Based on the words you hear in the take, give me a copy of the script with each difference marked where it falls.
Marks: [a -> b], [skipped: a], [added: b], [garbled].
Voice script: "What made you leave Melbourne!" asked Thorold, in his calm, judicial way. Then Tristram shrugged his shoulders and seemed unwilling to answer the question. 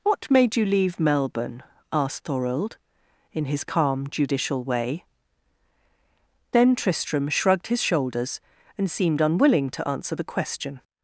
"What made you leave Melbourne!" asked Thorold, in his calm, judicial way. Then Tristram shrugged his shoulders and seemed unwilling to answer the question.